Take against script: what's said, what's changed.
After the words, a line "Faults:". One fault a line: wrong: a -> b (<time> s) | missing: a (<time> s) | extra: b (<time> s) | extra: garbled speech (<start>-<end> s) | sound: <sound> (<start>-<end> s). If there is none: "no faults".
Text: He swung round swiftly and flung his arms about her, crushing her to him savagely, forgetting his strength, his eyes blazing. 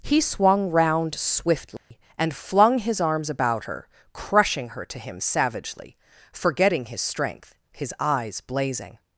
He swung round swiftly and flung his arms about her, crushing her to him savagely, forgetting his strength, his eyes blazing.
Faults:
sound: dropout (1.8-1.9 s)